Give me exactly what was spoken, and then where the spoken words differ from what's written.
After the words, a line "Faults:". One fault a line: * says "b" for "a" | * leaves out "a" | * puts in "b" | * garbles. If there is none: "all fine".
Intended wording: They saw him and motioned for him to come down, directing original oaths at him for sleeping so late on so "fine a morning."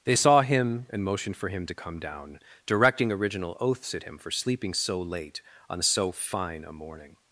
They saw him and motioned for him to come down, directing original oaths at him for sleeping so late on so "fine a morning."
Faults:
all fine